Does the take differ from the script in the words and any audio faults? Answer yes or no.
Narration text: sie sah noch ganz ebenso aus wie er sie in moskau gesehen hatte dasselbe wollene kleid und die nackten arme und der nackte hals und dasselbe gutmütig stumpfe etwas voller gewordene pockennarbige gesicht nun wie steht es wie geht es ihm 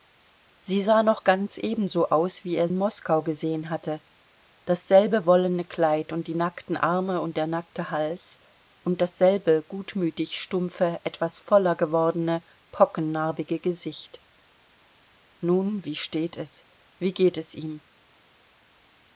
yes